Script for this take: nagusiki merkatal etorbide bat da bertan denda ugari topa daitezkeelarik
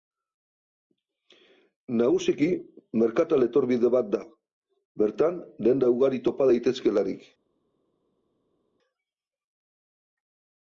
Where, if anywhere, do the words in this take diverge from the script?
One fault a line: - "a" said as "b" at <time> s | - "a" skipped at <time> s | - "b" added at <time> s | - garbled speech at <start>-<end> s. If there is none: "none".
none